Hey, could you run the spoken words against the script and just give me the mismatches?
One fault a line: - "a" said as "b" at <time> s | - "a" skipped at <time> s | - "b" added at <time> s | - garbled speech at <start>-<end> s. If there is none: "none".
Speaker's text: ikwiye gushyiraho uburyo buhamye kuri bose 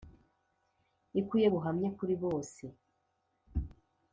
- "gushyiraho uburyo" skipped at 1.5 s